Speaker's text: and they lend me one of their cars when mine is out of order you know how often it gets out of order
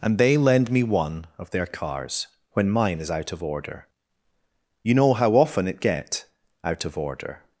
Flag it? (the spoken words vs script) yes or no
yes